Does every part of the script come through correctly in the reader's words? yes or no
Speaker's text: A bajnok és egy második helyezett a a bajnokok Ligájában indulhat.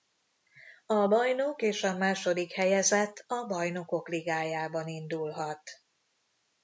no